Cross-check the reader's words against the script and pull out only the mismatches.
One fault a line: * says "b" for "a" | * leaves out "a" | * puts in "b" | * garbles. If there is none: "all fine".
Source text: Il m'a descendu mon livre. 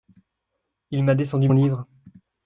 * leaves out "mon"